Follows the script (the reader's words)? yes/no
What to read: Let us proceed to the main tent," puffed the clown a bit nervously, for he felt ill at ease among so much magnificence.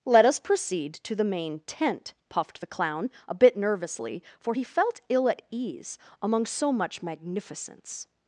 yes